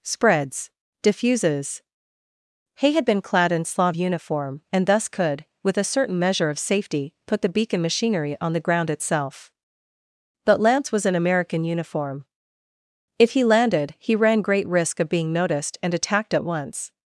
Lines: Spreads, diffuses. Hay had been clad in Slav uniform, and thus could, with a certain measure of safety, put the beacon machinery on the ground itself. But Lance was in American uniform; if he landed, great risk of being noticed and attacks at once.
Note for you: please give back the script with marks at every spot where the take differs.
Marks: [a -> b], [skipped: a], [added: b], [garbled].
Spreads, diffuses. Hay had been clad in Slav uniform, and thus could, with a certain measure of safety, put the beacon machinery on the ground itself. But Lance was in American uniform; if he landed, [added: he ran] great risk of being noticed and [attacks -> attacked] at once.